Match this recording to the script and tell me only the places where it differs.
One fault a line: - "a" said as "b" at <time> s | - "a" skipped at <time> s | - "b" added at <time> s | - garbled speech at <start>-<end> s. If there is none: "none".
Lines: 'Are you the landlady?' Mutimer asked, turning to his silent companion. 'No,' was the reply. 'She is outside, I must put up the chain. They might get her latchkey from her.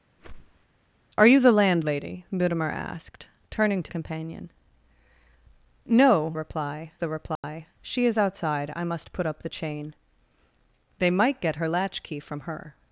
- "his silent" skipped at 3.9 s
- "was" said as "reply" at 6.3 s